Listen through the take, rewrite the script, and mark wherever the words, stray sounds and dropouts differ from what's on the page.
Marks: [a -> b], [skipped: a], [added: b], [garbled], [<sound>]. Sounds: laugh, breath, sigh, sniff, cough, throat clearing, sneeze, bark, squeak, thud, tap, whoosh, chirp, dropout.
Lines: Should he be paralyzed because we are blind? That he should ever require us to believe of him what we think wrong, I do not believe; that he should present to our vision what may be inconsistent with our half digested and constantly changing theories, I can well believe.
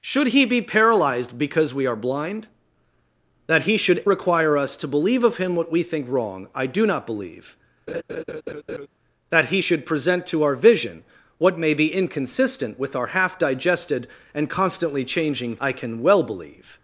Should he be paralyzed because we are blind? That he should [skipped: ever] require us to believe of him what we think wrong, I do not believe; [laugh] that he should present to our vision what may be inconsistent with our half digested and constantly changing [skipped: theories,] I can well believe.